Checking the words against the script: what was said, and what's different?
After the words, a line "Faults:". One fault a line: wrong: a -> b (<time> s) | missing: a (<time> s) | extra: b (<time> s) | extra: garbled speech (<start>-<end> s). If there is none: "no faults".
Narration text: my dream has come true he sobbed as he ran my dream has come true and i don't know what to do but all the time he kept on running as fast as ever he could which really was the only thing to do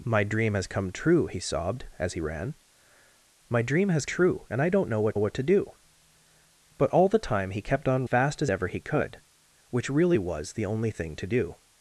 my dream has come true he sobbed as he ran my dream has true and i don't know what what to do but all the time he kept on fast as ever he could which really was the only thing to do
Faults:
missing: come (4.1 s)
extra: what (5.2 s)
missing: running as (8.1 s)